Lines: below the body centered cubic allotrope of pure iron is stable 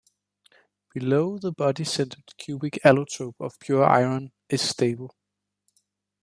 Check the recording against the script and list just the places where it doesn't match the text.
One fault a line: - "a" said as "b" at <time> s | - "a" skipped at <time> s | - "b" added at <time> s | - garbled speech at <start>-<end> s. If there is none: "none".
none